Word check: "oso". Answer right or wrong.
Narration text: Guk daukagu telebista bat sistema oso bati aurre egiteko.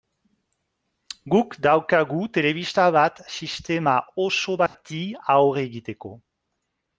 right